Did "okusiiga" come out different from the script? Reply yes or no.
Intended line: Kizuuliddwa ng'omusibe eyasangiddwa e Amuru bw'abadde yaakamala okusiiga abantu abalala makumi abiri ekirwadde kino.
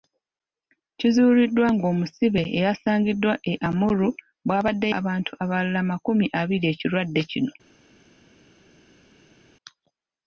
yes